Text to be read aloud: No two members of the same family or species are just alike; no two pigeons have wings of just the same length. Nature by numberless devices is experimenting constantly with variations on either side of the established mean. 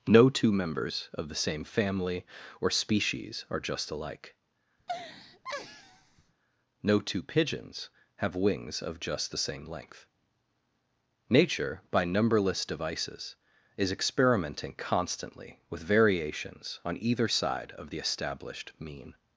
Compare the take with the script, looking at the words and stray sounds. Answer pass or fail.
fail